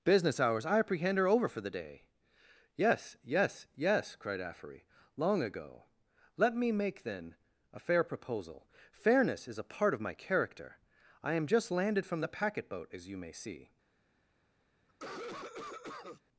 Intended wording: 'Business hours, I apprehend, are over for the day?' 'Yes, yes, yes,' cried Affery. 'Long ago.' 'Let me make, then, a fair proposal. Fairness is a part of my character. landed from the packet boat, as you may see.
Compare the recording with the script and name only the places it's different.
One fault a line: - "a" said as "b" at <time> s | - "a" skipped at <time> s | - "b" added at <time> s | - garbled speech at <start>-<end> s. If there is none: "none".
- "I am just" added at 11.2 s